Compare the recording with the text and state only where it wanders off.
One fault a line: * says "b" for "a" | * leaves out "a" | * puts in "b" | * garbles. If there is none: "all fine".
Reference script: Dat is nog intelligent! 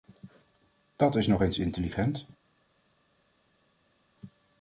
* puts in "eens"